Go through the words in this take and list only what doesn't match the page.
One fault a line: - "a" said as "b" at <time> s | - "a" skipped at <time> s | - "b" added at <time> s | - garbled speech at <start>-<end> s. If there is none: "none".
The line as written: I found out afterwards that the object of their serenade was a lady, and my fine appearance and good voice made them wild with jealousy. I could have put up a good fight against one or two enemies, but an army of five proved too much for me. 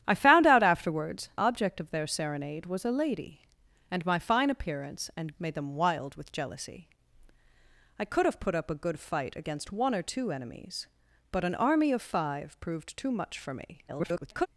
- "that the" skipped at 1.3 s
- "good voice" skipped at 5.4 s
- garbled speech at 13.9-14.5 s